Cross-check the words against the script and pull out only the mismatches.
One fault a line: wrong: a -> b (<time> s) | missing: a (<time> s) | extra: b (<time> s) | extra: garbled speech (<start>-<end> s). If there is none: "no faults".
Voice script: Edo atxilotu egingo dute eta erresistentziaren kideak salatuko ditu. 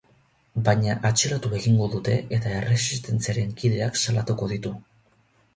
wrong: Edo -> Baina (0.7 s)